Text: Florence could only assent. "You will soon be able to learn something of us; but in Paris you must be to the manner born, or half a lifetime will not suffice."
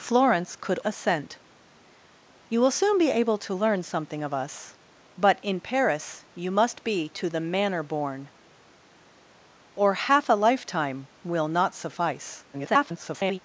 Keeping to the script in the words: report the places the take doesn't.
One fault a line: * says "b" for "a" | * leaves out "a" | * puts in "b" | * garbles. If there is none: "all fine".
* leaves out "only"
* garbles